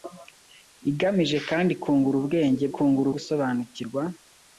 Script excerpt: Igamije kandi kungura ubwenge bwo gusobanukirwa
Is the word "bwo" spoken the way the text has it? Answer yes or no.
no